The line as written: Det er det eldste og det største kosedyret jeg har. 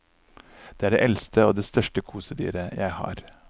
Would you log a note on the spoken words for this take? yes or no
no